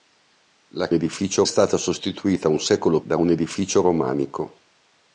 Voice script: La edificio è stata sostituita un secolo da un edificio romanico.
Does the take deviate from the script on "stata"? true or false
false